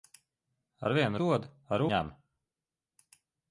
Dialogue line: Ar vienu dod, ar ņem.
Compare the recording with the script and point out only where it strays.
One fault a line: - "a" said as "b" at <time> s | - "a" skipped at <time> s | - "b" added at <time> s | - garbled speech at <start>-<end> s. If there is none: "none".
none